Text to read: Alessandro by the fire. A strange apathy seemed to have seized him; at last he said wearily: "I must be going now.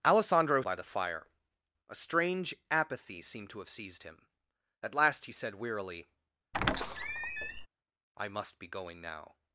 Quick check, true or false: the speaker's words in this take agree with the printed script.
true